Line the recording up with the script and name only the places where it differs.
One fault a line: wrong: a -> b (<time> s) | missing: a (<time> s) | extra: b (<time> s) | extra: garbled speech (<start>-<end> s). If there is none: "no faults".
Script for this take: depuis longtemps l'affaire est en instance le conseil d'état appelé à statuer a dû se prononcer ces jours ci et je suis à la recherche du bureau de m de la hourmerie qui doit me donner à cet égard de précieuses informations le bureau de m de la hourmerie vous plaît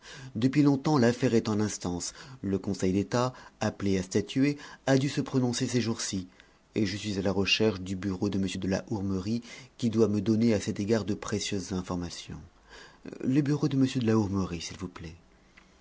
extra: s'il (14.6 s)